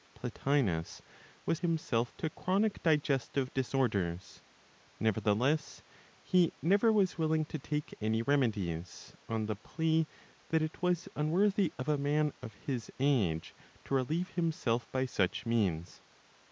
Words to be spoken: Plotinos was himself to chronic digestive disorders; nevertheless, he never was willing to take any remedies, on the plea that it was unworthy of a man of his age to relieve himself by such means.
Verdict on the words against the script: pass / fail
pass